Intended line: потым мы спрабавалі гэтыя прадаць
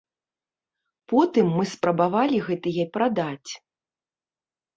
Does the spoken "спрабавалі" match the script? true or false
true